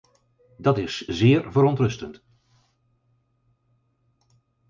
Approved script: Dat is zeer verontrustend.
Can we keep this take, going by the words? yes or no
yes